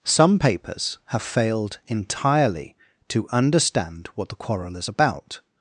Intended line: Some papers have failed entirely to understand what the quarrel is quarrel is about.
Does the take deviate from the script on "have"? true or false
false